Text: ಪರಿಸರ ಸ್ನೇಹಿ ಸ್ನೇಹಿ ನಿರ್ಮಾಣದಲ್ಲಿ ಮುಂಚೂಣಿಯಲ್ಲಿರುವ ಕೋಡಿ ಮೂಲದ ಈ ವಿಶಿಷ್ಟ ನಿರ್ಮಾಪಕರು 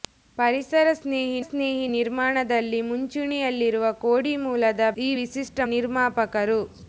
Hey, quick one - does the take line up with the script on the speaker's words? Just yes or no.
yes